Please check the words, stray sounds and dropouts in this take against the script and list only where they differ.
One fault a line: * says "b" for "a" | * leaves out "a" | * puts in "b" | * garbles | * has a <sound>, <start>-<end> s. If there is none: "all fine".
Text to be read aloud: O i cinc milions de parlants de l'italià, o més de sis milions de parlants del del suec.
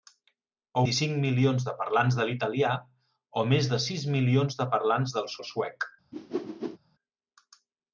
* has a whoosh, 6.1-6.8 s